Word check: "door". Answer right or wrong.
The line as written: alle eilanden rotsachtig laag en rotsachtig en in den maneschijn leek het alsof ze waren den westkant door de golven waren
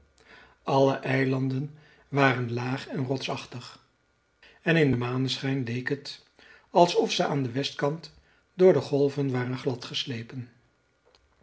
right